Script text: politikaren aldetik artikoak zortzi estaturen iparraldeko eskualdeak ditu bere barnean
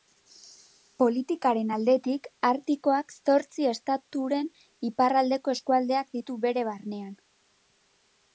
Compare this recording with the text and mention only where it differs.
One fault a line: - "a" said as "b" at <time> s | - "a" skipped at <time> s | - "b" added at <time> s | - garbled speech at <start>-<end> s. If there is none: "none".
none